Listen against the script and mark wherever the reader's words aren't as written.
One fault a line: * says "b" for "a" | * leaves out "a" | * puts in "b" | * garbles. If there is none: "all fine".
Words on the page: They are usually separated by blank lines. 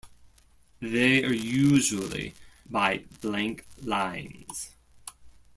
* leaves out "separated"